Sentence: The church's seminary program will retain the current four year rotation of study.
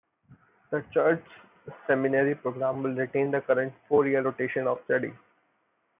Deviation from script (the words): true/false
false